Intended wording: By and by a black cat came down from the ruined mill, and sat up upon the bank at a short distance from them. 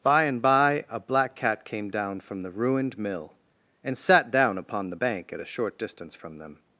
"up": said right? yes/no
no